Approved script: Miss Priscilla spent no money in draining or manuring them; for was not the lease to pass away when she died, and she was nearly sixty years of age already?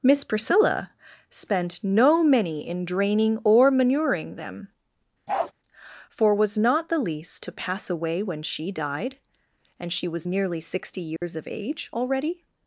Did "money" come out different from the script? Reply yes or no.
yes